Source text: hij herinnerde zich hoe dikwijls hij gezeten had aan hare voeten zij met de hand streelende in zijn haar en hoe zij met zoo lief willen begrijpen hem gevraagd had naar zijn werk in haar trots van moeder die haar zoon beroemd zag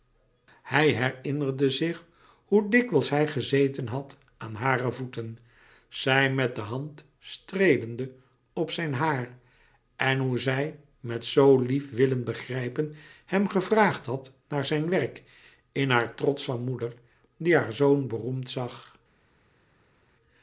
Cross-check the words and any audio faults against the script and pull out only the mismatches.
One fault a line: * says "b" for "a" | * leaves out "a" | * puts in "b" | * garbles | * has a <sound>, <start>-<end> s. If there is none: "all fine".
* says "op" for "in"